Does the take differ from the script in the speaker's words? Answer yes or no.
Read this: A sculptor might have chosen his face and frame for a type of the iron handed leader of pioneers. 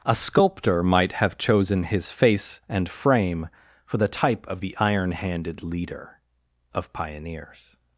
yes